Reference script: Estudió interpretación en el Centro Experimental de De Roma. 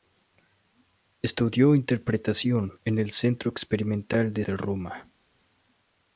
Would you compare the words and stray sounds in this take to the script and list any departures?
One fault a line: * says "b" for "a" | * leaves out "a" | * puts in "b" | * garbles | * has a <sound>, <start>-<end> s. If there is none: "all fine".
all fine